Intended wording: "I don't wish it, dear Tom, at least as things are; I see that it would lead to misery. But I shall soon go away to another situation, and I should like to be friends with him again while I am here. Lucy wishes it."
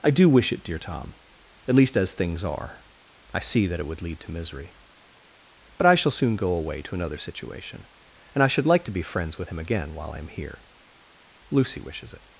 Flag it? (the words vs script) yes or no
yes